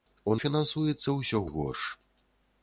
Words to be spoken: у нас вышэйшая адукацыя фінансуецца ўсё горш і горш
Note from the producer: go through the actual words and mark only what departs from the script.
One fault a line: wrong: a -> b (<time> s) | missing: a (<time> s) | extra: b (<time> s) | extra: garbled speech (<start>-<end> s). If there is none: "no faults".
missing: нас вышэйшая адукацыя (0.3 s)
missing: горш (1.4 s)